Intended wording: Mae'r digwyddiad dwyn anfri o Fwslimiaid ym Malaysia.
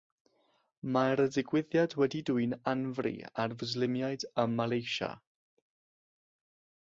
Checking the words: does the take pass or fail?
fail